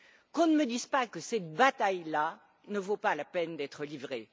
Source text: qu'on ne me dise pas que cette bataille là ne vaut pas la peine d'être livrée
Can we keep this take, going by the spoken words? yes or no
yes